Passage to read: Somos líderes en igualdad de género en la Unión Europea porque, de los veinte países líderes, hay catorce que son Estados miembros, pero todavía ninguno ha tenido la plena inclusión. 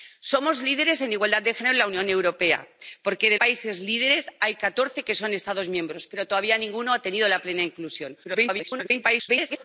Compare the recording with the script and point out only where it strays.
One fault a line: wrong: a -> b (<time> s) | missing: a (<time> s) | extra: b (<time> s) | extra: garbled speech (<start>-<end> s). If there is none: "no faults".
missing: los veinte (3.4 s)
extra: garbled speech (8.2-9.6 s)